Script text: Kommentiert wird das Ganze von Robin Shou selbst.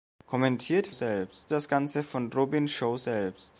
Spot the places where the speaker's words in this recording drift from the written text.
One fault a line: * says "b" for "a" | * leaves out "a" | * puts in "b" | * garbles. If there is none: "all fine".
* says "selbst" for "wird"